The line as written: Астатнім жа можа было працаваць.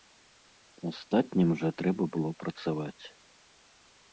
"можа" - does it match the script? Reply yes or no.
no